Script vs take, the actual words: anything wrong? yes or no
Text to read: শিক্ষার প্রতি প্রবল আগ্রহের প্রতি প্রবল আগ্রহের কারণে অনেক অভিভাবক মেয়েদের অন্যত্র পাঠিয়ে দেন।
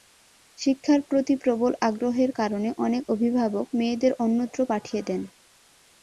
yes